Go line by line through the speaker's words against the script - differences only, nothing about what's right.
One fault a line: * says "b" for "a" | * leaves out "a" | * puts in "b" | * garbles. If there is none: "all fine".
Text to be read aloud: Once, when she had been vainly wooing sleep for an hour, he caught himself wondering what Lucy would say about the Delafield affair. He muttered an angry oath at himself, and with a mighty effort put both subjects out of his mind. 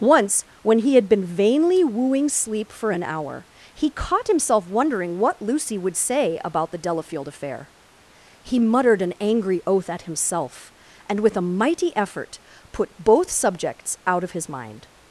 * says "he" for "she"